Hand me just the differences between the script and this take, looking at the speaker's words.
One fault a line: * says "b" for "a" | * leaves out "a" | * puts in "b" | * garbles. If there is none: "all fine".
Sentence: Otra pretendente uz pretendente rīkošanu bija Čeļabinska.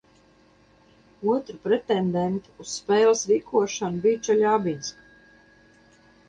* says "spēles" for "pretendente"